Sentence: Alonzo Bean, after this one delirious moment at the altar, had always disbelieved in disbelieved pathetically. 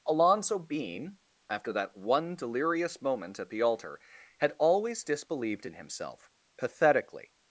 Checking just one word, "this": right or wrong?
wrong